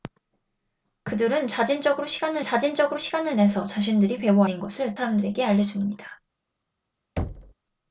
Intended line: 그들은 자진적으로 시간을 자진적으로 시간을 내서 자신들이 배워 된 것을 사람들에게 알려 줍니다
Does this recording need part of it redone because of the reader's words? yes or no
no